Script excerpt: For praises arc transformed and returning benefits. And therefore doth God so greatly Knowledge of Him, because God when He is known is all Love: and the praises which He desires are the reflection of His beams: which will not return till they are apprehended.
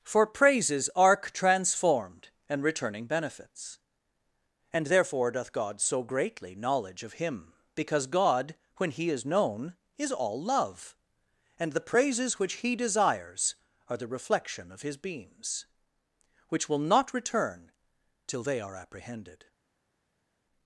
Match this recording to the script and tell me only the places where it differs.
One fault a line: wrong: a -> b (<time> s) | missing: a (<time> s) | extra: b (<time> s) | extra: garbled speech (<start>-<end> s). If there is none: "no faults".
no faults